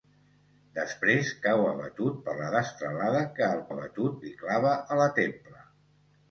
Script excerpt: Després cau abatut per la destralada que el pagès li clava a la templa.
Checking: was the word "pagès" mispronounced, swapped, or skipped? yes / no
yes